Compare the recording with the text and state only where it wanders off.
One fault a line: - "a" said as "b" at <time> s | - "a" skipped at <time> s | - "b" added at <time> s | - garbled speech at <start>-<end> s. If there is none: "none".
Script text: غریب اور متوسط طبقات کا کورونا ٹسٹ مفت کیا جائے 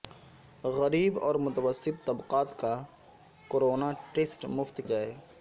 - "کیا" skipped at 4.8 s